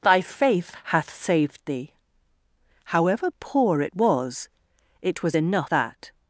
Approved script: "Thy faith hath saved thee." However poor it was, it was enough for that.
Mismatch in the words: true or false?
true